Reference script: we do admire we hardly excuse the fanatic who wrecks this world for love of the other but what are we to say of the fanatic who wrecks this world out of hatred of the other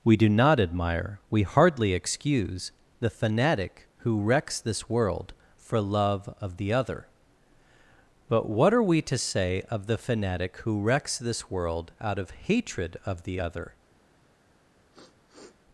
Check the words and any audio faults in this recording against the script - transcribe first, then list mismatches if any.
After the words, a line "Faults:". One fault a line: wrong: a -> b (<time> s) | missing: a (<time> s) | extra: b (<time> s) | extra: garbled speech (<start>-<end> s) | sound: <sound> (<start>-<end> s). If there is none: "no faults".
we do not admire we hardly excuse the fanatic who wrecks this world for love of the other but what are we to say of the fanatic who wrecks this world out of hatred of the other
Faults:
extra: not (0.3 s)
sound: sniff (14.9-15.6 s)